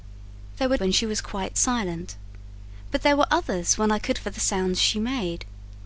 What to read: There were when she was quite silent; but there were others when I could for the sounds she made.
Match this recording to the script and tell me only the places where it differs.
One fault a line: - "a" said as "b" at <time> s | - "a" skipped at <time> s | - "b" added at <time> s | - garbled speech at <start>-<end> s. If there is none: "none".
none